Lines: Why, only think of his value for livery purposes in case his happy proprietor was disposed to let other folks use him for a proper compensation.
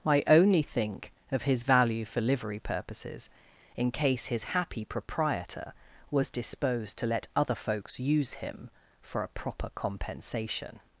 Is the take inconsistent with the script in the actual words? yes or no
yes